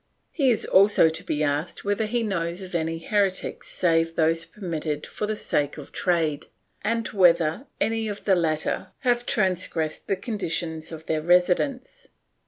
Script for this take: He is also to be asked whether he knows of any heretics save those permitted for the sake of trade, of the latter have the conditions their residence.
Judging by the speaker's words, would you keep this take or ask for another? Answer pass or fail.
fail